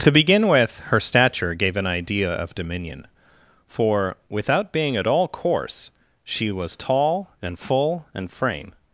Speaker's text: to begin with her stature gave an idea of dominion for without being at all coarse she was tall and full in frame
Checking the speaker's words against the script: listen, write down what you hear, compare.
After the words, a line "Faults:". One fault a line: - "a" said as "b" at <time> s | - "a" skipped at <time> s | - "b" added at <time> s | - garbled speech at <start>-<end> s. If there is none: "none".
to begin with her stature gave an idea of dominion for without being at all coarse she was tall and full and frame
Faults:
- "in" said as "and" at 8.1 s